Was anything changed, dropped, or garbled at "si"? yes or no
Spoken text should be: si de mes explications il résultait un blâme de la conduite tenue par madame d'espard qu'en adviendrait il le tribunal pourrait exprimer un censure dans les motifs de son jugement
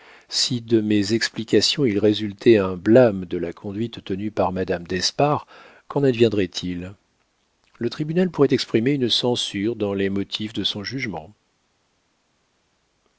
no